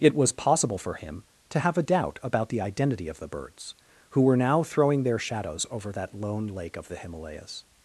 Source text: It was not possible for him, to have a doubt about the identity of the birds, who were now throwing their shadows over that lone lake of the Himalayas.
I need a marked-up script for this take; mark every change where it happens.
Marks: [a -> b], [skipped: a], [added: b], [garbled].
It was [skipped: not] possible for him, to have a doubt about the identity of the birds, who were now throwing their shadows over that lone lake of the Himalayas.